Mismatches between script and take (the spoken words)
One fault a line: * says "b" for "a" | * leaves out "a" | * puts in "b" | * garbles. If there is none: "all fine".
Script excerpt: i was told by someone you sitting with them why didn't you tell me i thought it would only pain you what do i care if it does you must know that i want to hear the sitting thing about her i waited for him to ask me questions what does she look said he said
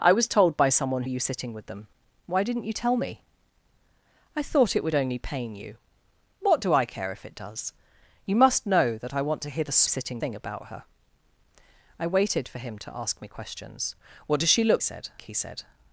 all fine